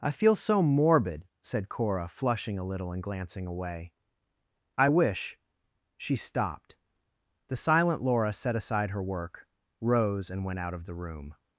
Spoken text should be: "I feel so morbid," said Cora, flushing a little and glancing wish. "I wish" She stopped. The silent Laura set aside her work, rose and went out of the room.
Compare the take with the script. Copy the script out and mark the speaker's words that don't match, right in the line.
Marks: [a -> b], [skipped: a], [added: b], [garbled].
"I feel so morbid," said Cora, flushing a little and glancing [wish. -> away] "I wish" She stopped. The silent Laura set aside her work, rose and went out of the room.